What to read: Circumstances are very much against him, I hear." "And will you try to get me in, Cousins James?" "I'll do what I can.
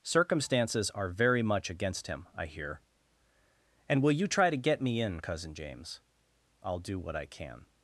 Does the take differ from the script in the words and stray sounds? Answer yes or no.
yes